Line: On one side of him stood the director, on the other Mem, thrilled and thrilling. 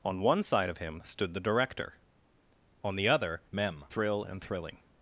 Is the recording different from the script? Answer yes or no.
yes